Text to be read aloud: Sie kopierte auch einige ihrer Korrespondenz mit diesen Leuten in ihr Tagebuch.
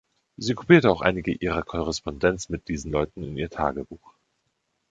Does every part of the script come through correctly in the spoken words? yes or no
yes